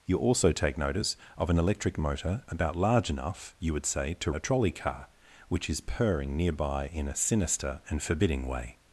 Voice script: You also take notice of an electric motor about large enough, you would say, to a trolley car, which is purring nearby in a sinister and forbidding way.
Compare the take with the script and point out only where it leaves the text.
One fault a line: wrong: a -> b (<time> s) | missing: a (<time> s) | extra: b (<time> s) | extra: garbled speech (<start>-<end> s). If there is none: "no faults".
no faults